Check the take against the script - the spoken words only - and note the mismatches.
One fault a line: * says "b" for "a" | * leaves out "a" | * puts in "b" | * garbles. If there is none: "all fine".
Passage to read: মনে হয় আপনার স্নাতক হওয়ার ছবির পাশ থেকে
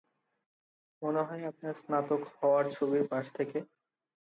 all fine